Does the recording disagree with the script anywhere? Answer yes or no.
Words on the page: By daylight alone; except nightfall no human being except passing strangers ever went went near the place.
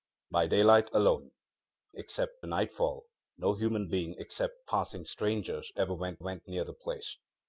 no